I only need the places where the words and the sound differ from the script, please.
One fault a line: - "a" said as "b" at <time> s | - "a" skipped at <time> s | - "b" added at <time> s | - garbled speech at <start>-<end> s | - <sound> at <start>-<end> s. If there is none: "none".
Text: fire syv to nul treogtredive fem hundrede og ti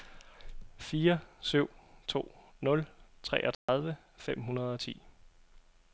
- dropout at 3.5-3.7 s